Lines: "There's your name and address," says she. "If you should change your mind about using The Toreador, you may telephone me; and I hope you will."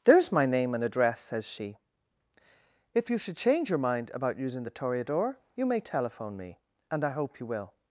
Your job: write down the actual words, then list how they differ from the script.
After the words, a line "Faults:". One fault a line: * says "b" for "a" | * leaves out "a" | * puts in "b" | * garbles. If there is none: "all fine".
"There's my name and address," says she. "If you should change your mind about using The Toreador, you may telephone me; and I hope you will."
Faults:
* says "my" for "your"